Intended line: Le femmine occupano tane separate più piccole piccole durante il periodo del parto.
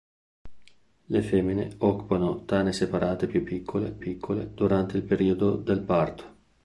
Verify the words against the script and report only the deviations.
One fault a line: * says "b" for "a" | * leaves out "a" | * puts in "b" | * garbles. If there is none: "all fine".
all fine